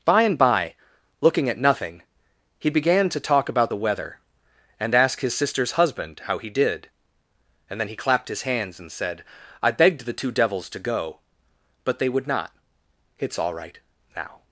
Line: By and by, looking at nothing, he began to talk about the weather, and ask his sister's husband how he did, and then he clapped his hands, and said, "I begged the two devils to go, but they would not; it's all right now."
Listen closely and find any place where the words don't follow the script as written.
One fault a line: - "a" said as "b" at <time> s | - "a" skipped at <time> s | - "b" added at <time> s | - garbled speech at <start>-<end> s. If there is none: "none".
none